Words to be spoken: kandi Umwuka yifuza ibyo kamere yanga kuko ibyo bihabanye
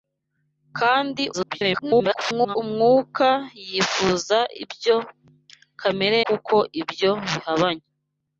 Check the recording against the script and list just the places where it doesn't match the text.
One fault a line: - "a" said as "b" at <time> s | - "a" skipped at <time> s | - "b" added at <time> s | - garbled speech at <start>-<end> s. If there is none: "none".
- garbled speech at 1.3-2.6 s
- "yanga" skipped at 6.2 s